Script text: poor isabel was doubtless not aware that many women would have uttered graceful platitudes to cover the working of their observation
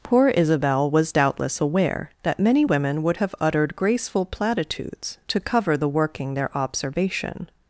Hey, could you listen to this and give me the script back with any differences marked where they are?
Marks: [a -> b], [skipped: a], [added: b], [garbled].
poor isabel was doubtless [skipped: not] aware that many women would have uttered graceful platitudes to cover the working [skipped: of] their observation